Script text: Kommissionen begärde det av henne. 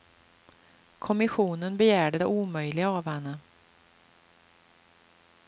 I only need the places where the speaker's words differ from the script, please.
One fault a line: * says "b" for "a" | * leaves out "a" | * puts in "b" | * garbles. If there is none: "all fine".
* puts in "omöjliga"